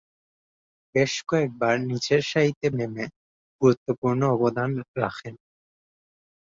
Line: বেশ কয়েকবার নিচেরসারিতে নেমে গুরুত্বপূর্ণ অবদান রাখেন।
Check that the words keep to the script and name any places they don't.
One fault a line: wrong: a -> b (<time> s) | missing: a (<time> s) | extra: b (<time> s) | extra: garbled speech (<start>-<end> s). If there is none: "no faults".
no faults